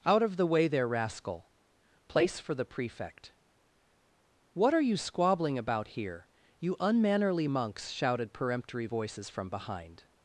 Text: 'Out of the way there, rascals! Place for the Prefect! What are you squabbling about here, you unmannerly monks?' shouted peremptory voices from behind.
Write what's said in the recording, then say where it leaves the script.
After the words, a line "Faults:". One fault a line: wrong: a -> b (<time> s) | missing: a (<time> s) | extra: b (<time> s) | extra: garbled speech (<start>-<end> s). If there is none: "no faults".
'Out of the way there, rascal! Place for the Prefect! What are you squabbling about here, you unmannerly monks?' shouted peremptory voices from behind.
Faults:
wrong: rascals -> rascal (0.9 s)